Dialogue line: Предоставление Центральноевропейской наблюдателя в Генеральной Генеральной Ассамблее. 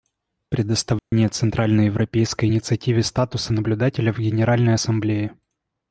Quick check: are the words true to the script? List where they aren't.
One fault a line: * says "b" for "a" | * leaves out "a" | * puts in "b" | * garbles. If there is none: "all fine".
* puts in "инициативе статуса"
* leaves out "Генеральной"